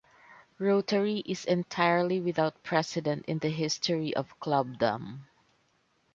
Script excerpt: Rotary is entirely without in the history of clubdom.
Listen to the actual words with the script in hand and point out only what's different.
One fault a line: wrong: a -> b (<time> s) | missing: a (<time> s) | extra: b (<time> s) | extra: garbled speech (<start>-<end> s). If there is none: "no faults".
extra: precedent (2.6 s)